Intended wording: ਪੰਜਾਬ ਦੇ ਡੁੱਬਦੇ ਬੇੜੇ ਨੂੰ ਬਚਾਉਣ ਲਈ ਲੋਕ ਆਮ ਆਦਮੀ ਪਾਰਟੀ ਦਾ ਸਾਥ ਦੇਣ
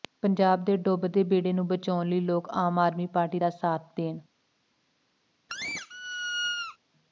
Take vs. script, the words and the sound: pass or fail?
fail